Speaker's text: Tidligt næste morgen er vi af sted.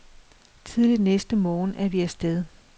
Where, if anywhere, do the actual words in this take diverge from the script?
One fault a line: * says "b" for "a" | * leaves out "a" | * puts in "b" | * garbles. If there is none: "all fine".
all fine